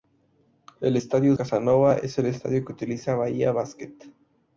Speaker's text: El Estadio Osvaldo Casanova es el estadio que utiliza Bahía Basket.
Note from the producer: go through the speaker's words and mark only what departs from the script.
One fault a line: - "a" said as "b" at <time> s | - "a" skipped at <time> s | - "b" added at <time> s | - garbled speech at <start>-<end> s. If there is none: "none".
- "Osvaldo" skipped at 1.3 s